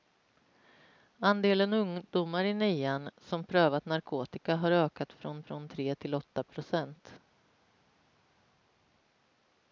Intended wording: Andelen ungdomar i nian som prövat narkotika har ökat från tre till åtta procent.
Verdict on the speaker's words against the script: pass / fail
fail